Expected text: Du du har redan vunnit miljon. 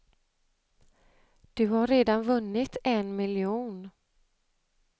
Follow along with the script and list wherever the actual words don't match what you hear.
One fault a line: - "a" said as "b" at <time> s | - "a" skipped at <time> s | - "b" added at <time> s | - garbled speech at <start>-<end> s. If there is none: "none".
- "du" skipped at 1.7 s
- "en" added at 2.8 s